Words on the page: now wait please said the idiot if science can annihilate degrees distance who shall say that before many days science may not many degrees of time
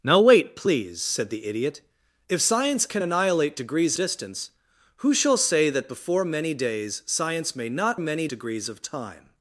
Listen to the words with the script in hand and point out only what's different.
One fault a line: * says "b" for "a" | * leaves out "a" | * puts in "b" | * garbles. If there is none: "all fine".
all fine